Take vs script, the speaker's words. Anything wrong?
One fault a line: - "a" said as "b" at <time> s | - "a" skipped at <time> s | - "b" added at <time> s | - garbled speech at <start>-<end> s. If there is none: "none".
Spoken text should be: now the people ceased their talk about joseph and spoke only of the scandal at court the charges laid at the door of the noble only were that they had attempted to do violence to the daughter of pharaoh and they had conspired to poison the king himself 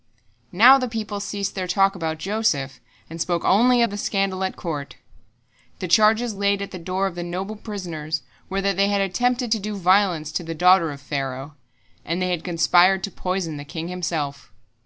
- "only" said as "prisoners" at 7.5 s